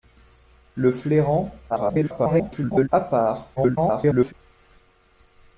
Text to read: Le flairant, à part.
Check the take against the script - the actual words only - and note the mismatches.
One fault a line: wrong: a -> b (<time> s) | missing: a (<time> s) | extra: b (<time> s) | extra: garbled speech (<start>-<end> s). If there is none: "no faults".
extra: garbled speech (1.7-2.9 s)
extra: garbled speech (3.6-4.3 s)